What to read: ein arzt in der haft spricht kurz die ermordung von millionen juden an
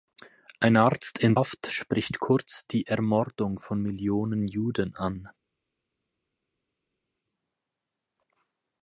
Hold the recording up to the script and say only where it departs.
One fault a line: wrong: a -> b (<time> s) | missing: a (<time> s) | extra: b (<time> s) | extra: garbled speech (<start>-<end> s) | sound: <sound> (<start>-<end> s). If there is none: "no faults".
missing: der (1.4 s)